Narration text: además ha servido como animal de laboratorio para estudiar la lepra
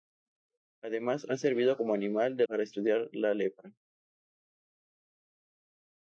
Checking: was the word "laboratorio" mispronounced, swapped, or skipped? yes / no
yes